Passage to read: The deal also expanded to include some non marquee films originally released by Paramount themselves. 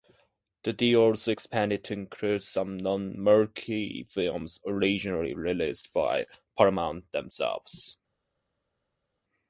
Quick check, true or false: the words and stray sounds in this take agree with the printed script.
true